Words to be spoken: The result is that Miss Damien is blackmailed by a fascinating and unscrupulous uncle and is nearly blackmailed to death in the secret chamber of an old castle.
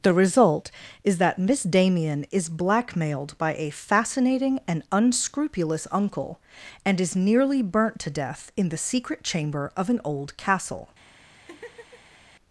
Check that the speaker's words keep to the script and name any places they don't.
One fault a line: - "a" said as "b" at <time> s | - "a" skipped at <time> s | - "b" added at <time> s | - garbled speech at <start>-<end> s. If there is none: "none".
- "blackmailed" said as "burnt" at 7.6 s